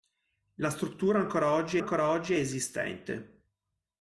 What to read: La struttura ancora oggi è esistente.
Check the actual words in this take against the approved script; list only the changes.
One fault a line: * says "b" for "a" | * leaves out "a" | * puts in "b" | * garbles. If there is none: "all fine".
* puts in "ancora oggi"